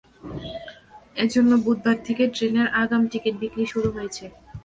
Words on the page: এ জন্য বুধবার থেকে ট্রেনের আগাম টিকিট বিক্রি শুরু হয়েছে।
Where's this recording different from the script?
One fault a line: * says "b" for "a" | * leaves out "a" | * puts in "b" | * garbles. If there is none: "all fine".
all fine